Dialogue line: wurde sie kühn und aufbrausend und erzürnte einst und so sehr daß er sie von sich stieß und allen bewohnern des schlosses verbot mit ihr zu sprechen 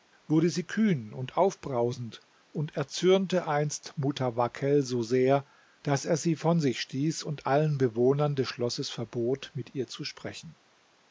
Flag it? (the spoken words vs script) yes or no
yes